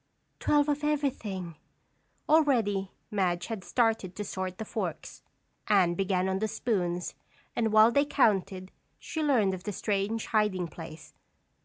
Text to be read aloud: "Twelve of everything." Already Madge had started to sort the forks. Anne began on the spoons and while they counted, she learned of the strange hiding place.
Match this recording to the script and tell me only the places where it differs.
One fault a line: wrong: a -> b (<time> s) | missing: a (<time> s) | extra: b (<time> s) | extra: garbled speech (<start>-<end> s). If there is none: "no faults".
no faults